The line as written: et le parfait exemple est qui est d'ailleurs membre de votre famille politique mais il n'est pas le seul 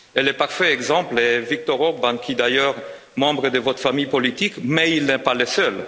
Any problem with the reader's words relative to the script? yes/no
yes